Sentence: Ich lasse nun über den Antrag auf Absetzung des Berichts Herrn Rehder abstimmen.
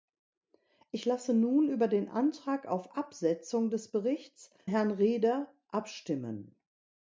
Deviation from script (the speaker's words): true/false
false